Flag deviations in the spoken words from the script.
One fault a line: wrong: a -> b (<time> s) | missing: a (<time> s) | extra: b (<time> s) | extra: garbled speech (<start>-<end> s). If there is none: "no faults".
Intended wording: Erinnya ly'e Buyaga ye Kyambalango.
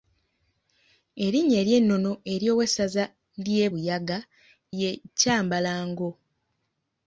extra: ery'ennono ery'owessaza (1.6 s)